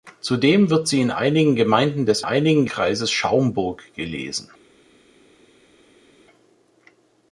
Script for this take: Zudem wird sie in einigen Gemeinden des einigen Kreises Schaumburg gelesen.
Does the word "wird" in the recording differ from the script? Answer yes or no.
no